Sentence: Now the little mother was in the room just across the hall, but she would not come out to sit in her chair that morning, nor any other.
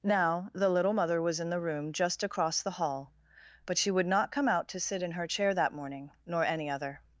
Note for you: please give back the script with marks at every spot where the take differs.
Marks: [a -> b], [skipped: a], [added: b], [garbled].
Now the little mother was in the room just across the hall, but she would not come out to sit in her chair that morning, nor any other.